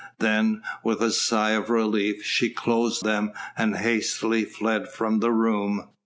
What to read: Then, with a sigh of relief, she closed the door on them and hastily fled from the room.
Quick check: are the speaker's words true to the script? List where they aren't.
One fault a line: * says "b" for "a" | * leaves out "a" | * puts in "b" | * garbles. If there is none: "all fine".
* leaves out "the door on"